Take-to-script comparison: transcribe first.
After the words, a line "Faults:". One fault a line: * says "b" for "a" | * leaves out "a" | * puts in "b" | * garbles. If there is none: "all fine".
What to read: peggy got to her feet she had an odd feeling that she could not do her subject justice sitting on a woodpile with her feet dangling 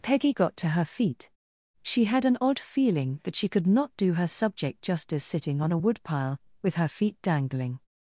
peggy got to her feet she had an odd feeling that she could not do her subject justice sitting on a woodpile with her feet dangling
Faults:
all fine